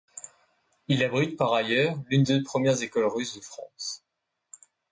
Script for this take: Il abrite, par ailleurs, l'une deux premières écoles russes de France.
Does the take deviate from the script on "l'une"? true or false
false